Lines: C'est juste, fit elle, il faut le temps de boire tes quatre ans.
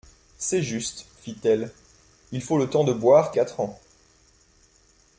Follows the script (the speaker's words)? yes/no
no